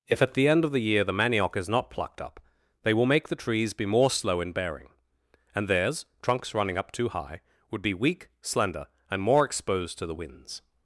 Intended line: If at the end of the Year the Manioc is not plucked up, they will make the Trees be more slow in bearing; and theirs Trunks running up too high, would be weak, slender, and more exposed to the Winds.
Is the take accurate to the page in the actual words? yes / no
yes